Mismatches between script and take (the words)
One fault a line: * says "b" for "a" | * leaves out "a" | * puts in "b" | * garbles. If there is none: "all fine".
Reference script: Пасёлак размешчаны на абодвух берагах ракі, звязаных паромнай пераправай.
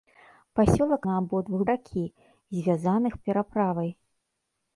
* leaves out "размешчаны"
* leaves out "берагах"
* leaves out "паромнай"